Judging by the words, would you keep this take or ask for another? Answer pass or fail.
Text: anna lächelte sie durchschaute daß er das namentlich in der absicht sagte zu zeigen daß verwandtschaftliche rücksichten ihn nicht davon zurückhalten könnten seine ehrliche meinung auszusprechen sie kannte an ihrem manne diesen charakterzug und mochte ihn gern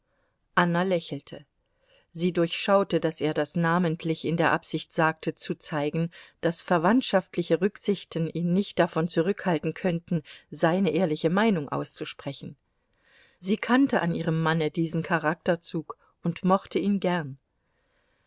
pass